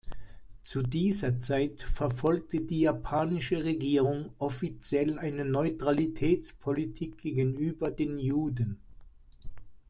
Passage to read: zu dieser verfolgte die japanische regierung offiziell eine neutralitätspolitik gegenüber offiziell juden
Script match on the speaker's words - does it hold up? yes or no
no